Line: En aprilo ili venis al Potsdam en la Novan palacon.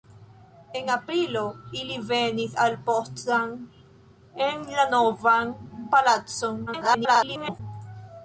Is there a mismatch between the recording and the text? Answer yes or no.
yes